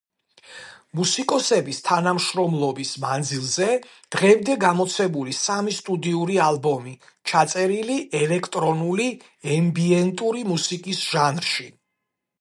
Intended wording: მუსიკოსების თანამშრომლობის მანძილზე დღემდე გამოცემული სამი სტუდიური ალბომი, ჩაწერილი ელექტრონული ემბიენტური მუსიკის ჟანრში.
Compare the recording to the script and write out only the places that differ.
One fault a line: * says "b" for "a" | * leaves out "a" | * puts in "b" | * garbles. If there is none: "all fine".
all fine